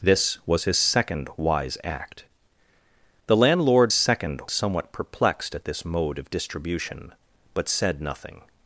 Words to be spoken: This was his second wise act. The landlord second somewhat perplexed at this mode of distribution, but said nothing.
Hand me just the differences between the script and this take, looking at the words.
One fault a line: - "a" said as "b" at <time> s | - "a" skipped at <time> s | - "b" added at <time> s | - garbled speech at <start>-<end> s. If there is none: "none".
none